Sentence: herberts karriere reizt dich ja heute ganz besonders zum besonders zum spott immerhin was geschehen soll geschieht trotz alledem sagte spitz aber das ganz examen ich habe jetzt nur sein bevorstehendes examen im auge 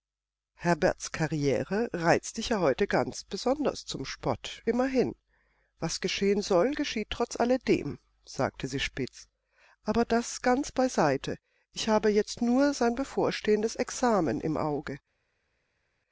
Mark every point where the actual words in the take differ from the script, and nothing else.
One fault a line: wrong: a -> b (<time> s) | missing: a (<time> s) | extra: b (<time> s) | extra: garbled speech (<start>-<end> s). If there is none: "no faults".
missing: besonders zum (4.0 s)
extra: sie (8.7 s)
wrong: examen -> beiseite (10.7 s)